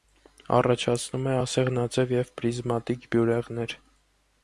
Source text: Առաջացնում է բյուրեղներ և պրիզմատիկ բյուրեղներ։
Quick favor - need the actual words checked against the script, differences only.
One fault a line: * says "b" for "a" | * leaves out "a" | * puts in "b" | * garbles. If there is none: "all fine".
* says "ասեղնաձև" for "բյուրեղներ"